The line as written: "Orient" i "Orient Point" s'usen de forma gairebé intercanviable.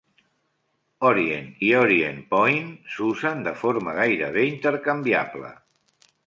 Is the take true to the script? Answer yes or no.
yes